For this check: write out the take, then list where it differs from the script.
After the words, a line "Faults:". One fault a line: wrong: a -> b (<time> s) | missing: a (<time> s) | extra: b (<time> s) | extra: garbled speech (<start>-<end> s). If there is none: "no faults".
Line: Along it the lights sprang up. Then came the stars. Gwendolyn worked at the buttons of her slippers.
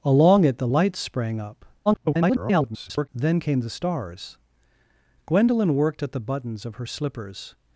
Along it the lights sprang up. [garbled] Then came the stars. Gwendolyn worked at the buttons of her slippers.
Faults:
extra: garbled speech (1.9-3.1 s)